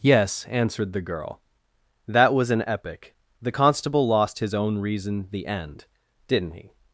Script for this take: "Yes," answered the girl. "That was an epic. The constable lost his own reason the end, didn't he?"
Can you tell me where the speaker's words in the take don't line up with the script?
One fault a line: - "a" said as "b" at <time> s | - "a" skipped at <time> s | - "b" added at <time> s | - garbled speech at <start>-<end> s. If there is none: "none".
none